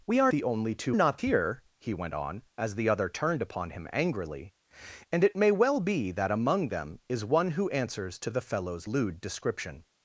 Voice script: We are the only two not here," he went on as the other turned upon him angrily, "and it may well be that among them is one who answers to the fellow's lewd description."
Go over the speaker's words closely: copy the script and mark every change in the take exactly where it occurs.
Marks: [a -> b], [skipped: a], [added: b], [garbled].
We are the only two not here," he went on as the other turned upon him angrily, "and it may well be that among them is one who answers to the fellow's lewd description."